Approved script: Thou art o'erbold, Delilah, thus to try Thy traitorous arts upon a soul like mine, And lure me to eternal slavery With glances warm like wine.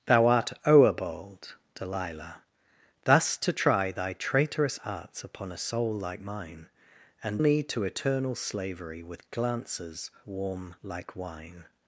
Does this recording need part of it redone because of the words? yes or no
yes